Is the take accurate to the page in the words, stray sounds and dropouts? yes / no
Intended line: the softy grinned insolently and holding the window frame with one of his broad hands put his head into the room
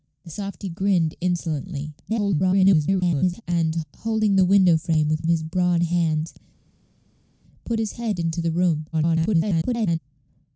no